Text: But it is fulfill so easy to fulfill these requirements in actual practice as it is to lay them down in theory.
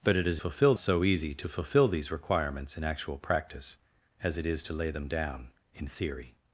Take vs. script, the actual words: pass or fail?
pass